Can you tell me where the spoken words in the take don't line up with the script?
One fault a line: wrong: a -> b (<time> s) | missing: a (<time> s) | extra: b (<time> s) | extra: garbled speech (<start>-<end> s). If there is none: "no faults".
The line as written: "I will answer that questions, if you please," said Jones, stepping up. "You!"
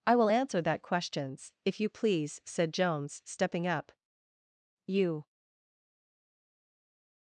no faults